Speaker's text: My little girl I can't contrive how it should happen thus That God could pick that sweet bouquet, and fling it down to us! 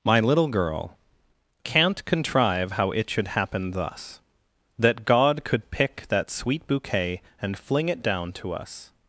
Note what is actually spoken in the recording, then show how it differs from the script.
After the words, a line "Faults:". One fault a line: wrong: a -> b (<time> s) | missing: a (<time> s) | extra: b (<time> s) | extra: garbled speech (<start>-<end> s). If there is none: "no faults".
My little girl can't contrive how it should happen thus That God could pick that sweet bouquet, and fling it down to us!
Faults:
missing: I (1.0 s)